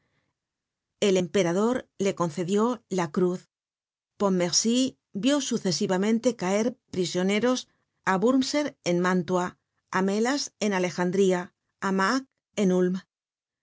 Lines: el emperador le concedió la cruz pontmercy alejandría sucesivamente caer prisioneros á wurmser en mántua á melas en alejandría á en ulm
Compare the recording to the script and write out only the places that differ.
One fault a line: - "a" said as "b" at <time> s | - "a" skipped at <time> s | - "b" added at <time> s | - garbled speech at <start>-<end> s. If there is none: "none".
- "alejandría" said as "vió" at 5.1 s
- "mack" added at 12.0 s